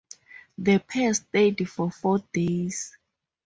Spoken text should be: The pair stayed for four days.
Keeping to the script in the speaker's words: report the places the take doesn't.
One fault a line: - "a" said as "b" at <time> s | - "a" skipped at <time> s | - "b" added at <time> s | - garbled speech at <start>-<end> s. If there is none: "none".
none